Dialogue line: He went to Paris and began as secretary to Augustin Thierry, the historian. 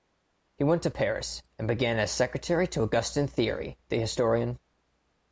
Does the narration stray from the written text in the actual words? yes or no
no